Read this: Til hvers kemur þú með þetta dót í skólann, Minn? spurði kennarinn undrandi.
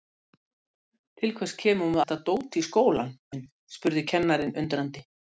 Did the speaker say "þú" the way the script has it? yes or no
yes